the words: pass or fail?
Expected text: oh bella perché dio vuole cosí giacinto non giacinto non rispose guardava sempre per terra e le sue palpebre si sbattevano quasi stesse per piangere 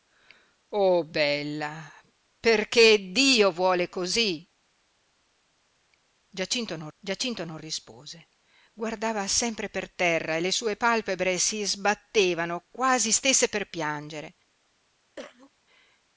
pass